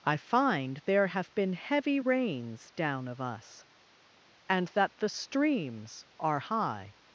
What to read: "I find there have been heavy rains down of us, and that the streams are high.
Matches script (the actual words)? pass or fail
pass